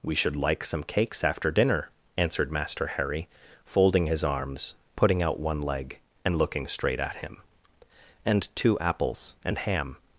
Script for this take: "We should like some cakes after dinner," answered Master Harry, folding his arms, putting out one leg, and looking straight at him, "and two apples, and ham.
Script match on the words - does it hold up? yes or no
yes